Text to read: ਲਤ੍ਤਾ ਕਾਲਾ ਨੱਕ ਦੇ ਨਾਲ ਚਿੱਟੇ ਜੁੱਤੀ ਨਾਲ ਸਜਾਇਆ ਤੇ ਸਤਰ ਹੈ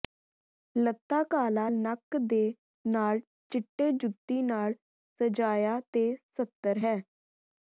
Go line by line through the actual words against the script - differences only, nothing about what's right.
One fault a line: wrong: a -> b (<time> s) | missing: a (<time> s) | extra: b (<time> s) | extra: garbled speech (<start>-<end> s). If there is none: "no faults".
no faults